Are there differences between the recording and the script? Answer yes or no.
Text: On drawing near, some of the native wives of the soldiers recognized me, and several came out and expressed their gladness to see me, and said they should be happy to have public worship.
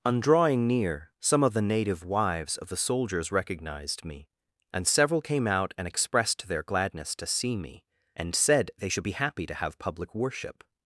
no